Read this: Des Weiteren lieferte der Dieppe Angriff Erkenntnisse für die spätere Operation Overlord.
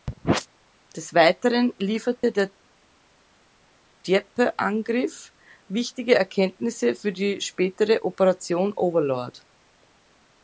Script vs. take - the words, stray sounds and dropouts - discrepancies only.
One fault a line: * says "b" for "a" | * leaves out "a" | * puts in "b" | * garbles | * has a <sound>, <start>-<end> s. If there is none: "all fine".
* has a dropout, 2.2-2.2 s
* puts in "wichtige"